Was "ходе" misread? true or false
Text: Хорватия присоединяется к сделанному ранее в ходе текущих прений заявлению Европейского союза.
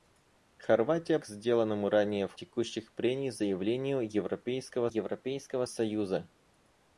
true